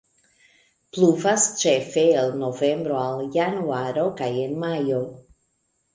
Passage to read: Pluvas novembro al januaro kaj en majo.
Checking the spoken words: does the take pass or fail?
fail